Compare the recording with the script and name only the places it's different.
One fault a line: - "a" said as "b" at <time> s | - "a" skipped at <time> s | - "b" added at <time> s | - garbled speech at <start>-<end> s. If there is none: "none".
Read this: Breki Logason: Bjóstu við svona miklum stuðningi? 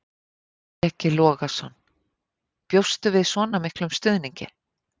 none